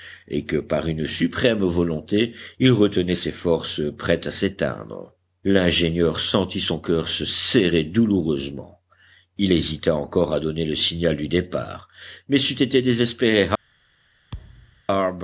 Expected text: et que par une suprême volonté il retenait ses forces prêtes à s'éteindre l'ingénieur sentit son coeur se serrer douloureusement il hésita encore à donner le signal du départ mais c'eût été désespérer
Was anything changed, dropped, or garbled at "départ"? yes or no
no